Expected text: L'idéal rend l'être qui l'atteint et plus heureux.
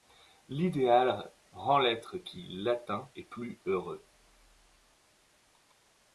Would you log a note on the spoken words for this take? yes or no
no